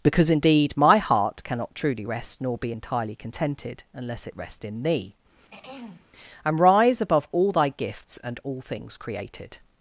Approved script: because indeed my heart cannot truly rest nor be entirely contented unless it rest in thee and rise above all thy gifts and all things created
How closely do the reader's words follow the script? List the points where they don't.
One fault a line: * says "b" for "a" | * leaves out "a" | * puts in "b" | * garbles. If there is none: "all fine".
all fine